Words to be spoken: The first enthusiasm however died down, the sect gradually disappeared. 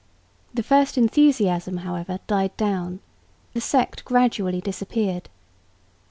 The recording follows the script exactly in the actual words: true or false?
true